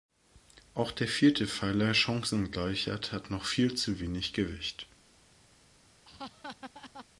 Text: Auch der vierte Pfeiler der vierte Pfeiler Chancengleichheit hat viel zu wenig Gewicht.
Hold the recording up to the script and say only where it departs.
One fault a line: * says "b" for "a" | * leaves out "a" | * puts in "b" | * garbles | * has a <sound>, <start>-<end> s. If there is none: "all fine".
* leaves out "der vierte Pfeiler"
* puts in "noch"
* has a laugh, 6.0-7.1 s